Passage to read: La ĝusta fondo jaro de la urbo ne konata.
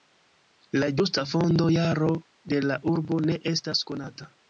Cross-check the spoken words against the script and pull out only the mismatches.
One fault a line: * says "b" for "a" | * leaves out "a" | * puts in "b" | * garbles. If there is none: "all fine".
* puts in "estas"